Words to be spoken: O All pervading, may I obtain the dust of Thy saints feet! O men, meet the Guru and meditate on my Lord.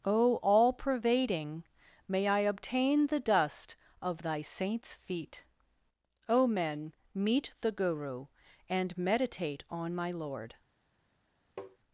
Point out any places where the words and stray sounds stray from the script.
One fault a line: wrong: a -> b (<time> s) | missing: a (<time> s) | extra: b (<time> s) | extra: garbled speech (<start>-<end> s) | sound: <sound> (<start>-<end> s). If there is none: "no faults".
sound: tap (11.6-11.8 s)